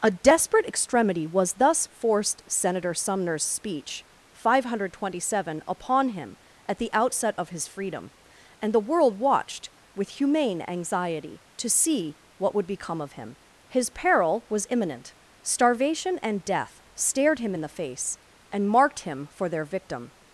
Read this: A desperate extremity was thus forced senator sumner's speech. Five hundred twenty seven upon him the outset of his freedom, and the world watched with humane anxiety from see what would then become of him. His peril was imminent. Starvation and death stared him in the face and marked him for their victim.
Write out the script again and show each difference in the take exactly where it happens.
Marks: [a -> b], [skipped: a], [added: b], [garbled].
A desperate extremity was thus forced senator sumner's speech. Five hundred twenty seven upon him [added: at] the outset of his freedom, and the world watched with humane anxiety [from -> to] see what would [skipped: then] become of him. His peril was imminent. Starvation and death stared him in the face and marked him for their victim.